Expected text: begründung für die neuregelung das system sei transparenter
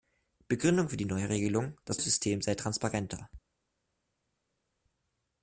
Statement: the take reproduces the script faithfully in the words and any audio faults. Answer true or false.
true